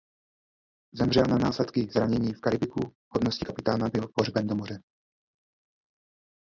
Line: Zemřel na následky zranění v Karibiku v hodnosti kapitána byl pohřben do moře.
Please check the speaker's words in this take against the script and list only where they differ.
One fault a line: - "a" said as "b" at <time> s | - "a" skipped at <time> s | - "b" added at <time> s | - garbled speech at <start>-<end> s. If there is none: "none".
none